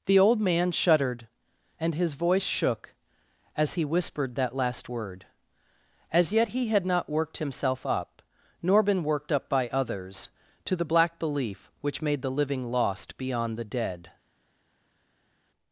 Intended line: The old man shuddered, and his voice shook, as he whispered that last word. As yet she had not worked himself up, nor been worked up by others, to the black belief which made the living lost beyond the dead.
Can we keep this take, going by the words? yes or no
no